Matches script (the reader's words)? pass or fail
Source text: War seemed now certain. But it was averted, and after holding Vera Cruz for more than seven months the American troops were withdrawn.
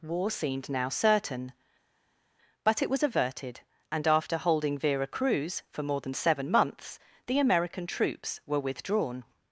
pass